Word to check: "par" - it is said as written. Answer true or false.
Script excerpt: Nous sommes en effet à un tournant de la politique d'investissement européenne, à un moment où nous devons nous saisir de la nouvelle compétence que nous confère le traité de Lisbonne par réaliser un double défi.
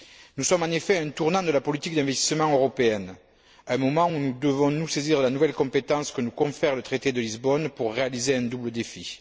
false